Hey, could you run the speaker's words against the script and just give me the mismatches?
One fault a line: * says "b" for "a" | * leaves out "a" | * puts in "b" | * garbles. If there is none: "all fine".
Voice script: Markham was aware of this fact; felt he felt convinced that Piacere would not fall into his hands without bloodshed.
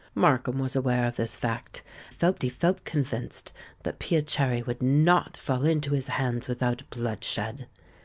all fine